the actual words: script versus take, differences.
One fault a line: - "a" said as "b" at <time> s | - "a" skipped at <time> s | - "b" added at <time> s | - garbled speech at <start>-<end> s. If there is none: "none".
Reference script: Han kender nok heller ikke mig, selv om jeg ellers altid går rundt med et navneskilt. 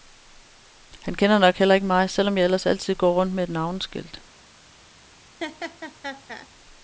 none